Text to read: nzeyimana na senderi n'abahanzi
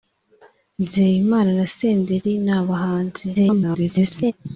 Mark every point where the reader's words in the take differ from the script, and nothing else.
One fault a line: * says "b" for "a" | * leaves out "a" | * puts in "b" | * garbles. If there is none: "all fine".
* garbles